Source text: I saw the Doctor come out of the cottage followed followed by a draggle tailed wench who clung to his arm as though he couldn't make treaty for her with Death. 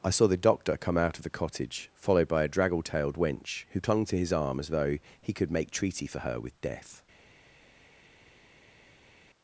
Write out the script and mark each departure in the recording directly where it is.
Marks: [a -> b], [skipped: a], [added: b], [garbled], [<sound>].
I saw the Doctor come out of the cottage followed [skipped: followed] by a draggle tailed wench who clung to his arm as though he [couldn't -> could] make treaty for her with Death.